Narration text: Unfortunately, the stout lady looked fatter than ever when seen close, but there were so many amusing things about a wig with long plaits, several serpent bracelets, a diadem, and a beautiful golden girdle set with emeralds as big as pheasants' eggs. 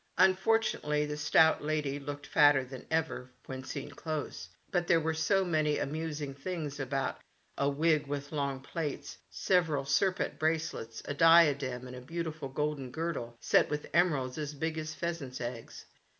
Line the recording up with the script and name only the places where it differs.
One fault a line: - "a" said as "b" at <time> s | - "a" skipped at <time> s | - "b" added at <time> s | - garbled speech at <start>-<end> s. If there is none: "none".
none